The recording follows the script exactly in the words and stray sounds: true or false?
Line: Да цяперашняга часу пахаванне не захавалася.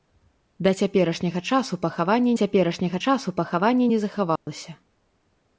false